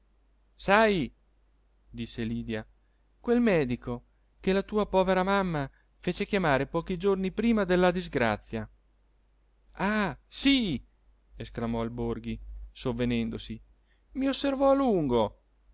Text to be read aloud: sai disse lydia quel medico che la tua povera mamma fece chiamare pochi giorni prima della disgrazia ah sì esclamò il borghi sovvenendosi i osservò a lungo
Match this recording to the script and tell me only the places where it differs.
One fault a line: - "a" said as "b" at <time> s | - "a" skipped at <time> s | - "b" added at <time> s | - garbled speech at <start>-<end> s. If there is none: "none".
none